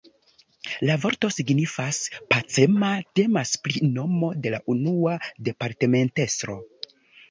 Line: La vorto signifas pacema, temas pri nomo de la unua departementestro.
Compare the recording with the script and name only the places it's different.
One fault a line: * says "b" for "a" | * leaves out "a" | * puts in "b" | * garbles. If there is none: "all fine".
all fine